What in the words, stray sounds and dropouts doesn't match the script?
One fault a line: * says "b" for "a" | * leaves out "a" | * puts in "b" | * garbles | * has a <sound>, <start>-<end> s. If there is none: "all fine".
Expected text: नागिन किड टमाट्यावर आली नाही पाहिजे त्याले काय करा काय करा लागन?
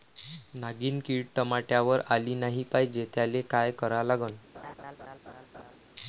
* leaves out "काय करा"
* has a laugh, 4.5-5.8 s